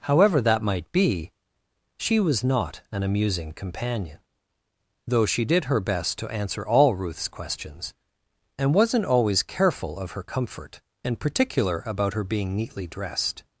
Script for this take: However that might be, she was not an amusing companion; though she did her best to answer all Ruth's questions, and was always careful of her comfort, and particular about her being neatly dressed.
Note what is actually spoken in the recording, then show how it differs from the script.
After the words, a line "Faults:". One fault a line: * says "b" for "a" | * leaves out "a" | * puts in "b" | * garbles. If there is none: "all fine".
However that might be, she was not an amusing companion; though she did her best to answer all Ruth's questions, and wasn't always careful of her comfort, and particular about her being neatly dressed.
Faults:
* says "wasn't" for "was"